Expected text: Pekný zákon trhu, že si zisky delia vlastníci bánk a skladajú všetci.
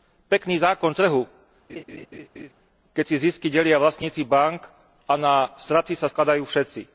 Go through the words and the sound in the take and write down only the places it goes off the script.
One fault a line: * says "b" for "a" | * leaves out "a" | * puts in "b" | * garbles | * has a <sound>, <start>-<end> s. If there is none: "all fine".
* has a laugh, 1.7-2.5 s
* says "keď" for "že"
* puts in "na straty sa"